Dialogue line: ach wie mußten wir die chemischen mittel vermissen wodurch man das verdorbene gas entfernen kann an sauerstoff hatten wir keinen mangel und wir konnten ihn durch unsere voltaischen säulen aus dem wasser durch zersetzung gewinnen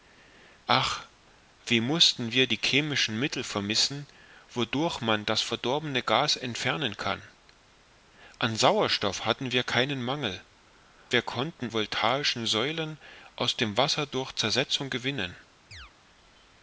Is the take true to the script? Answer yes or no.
no